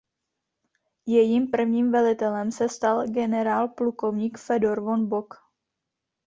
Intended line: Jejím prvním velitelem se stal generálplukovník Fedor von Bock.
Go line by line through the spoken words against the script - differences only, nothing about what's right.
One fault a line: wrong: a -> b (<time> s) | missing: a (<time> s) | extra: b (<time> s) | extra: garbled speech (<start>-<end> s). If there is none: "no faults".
no faults